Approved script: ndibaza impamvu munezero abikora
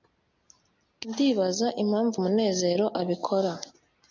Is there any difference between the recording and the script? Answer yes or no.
no